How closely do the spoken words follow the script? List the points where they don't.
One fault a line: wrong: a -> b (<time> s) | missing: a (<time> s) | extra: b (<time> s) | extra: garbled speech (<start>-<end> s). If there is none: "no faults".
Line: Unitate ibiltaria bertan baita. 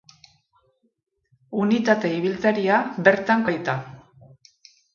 no faults